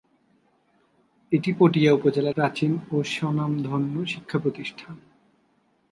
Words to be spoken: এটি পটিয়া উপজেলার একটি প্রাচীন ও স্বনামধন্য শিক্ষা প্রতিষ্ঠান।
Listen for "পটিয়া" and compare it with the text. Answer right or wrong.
right